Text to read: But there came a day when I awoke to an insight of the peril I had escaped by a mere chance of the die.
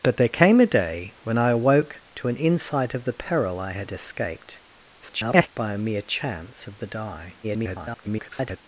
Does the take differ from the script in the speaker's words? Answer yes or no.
yes